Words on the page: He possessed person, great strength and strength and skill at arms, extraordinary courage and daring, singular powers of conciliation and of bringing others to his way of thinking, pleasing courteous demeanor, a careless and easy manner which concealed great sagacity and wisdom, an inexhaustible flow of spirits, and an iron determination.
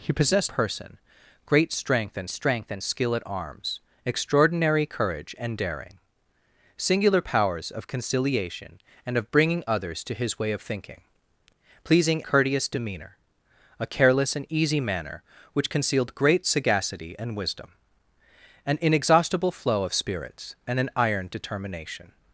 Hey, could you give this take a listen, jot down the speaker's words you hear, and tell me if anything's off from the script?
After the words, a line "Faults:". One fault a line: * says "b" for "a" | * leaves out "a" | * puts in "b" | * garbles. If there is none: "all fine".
He possessed person, great strength and strength and skill at arms, extraordinary courage and daring, singular powers of conciliation and of bringing others to his way of thinking, pleasing courteous demeanor, a careless and easy manner which concealed great sagacity and wisdom, an inexhaustible flow of spirits, and an iron determination.
Faults:
all fine